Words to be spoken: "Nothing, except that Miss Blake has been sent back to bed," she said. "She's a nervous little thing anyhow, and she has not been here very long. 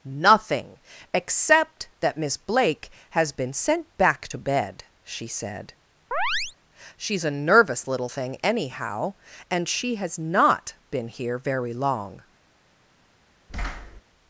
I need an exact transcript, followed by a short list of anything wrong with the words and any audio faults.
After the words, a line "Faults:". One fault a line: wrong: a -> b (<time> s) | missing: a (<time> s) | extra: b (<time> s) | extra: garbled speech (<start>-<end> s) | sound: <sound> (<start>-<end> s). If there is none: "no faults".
"Nothing, except that Miss Blake has been sent back to bed," she said. "She's a nervous little thing anyhow, and she has not been here very long.
Faults:
sound: chirp (6.1-6.6 s)
sound: thud (13.5-14.0 s)